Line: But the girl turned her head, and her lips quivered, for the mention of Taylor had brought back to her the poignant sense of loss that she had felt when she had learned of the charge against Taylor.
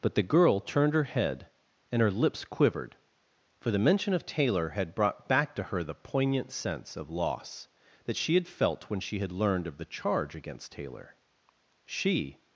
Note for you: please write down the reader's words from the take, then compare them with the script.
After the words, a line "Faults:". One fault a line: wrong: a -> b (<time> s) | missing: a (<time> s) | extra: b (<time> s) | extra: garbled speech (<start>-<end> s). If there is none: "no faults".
But the girl turned her head, and her lips quivered, for the mention of Taylor had brought back to her the poignant sense of loss that she had felt when she had learned of the charge against Taylor. She
Faults:
extra: She (11.8 s)